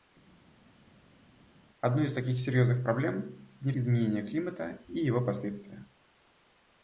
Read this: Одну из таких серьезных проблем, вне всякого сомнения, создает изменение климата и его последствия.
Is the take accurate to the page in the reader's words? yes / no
no